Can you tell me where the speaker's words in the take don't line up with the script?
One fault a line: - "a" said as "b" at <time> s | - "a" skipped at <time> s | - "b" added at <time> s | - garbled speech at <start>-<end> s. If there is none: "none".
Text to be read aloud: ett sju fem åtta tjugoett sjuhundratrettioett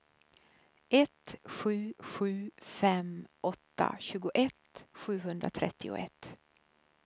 - "sju" added at 2.0 s